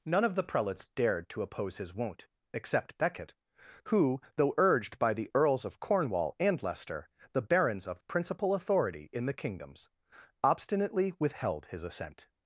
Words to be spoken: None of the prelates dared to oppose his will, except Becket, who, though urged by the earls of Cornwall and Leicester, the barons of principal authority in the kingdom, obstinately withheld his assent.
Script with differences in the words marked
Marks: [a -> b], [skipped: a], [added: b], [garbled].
None of the prelates dared to oppose his [will, -> won't] except Becket, who, though urged by the earls of Cornwall and Leicester, the barons of principal authority in the [kingdom, -> kingdoms] obstinately withheld his assent.